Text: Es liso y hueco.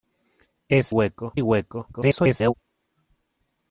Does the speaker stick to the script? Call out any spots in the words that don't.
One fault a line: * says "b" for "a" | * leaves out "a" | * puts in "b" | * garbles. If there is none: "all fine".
* says "hueco" for "liso"
* garbles